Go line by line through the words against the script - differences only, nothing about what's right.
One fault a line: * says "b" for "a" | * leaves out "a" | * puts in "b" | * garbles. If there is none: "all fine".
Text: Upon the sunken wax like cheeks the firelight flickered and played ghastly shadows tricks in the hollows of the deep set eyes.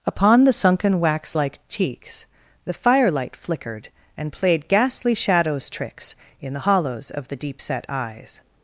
all fine